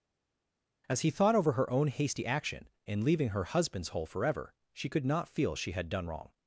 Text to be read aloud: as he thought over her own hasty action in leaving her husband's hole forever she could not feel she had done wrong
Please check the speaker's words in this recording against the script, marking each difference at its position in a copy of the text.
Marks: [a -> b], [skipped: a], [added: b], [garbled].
as he thought over her own hasty action in leaving her husband's hole forever she could not feel she had done wrong